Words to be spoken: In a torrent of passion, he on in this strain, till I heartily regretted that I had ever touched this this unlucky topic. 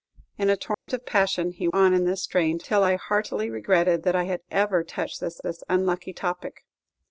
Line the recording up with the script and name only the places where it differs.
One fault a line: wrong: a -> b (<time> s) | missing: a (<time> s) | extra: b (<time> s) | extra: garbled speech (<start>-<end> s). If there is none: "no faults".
no faults